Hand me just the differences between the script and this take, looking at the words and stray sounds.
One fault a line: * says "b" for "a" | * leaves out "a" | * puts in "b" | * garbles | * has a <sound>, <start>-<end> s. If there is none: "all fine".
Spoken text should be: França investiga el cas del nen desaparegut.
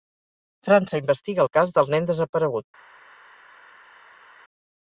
all fine